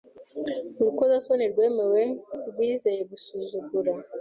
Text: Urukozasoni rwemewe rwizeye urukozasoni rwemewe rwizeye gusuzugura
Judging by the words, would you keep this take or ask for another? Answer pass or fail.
fail